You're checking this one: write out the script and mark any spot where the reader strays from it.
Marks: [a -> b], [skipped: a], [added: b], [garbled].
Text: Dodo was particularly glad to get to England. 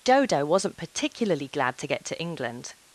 Dodo [was -> wasn't] particularly glad to get to England.